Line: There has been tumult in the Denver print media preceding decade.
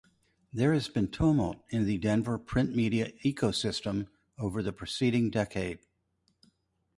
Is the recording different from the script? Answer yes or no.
yes